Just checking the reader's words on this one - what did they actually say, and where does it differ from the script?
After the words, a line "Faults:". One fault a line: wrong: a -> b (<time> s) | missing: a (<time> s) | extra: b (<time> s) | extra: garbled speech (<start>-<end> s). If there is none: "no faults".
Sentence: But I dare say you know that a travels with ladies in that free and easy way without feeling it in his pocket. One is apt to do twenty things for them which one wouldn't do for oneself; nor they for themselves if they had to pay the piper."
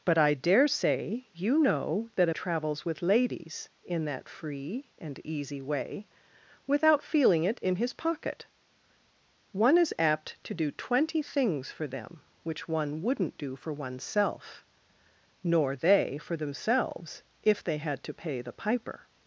But I dare say you know that a travels with ladies in that free and easy way without feeling it in his pocket. One is apt to do twenty things for them which one wouldn't do for oneself; nor they for themselves if they had to pay the piper."
Faults:
no faults